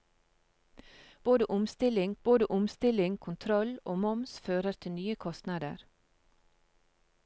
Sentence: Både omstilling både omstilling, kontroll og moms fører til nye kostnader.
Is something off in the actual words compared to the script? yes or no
no